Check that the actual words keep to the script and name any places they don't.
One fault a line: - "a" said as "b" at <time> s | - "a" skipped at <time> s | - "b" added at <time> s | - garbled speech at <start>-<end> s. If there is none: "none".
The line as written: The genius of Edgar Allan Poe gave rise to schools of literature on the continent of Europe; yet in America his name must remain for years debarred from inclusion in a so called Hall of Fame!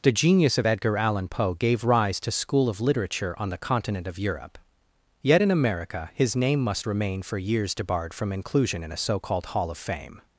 - "schools" said as "school" at 2.3 s